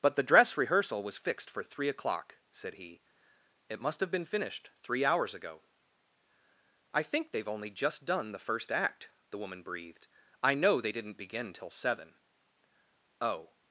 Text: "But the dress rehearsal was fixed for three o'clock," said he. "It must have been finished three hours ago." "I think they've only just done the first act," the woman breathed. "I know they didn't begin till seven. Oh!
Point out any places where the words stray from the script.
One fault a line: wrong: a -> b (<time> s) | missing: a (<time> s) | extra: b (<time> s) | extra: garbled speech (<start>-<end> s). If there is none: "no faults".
no faults